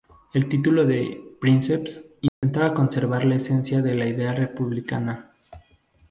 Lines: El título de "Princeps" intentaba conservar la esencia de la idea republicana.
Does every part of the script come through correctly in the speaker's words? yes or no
yes